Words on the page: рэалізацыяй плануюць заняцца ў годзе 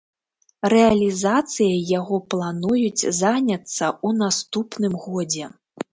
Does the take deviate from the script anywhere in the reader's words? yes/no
yes